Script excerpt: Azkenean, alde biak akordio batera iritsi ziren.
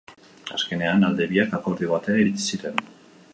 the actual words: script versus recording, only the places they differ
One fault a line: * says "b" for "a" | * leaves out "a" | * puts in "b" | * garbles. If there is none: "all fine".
all fine